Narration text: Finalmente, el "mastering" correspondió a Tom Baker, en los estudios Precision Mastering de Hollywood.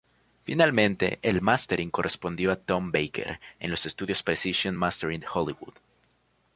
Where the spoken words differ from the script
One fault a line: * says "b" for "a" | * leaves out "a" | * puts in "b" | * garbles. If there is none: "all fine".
all fine